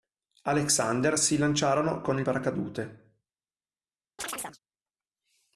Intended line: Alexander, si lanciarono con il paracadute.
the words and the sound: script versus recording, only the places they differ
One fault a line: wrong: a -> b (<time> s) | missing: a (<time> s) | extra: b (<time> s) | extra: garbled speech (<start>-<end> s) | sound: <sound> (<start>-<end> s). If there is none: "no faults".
sound: chirp (4.2-4.6 s)